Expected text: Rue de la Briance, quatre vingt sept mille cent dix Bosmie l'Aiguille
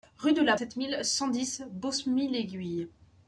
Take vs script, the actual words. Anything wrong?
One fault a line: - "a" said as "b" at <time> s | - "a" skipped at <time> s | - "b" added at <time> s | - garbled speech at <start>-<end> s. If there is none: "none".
- "Briance quatre vingt" skipped at 0.6 s